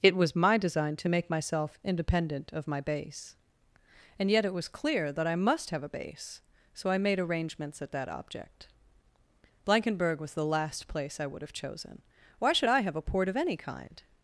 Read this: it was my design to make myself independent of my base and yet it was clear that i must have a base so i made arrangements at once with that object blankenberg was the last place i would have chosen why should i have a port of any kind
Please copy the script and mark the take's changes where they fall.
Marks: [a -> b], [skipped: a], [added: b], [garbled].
it was my design to make myself independent of my base and yet it was clear that i must have a base so i made arrangements at [skipped: once with] that object blankenberg was the last place i would have chosen why should i have a port of any kind